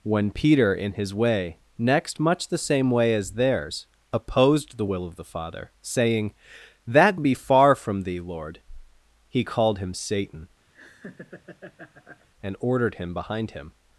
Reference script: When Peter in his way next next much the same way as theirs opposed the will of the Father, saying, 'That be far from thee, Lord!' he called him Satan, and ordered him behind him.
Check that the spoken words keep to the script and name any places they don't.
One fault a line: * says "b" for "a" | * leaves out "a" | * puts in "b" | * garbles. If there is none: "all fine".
* leaves out "next"